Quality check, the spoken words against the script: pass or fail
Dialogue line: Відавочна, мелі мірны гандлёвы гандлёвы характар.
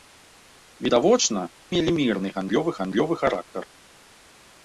pass